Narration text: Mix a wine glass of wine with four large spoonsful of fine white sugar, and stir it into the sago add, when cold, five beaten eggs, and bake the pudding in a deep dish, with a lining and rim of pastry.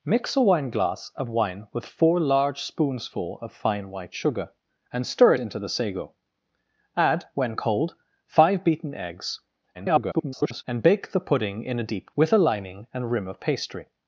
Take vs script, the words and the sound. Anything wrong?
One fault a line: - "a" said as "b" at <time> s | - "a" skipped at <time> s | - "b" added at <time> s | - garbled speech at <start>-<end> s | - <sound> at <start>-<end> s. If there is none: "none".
- "it" skipped at 5.3 s
- garbled speech at 9.7-10.6 s
- "dish" skipped at 12.1 s